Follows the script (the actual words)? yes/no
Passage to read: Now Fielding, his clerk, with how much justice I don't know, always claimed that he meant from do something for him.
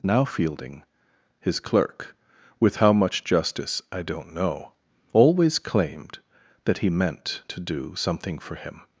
no